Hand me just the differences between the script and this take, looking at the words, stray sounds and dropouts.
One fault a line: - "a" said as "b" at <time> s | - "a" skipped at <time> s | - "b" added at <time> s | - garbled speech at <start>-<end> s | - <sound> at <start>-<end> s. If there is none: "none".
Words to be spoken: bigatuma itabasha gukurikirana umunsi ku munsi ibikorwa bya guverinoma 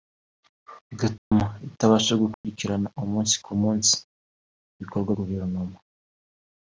- dropout at 1.2-1.3 s
- dropout at 2.3-2.4 s
- "bya" skipped at 5.1 s